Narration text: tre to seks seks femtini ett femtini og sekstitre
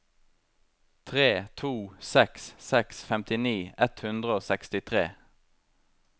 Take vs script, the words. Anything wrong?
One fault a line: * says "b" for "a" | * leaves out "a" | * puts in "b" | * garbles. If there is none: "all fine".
* says "hundre" for "femtini"